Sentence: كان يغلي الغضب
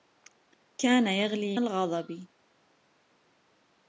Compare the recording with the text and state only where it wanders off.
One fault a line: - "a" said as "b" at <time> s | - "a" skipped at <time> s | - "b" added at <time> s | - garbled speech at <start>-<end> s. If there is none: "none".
none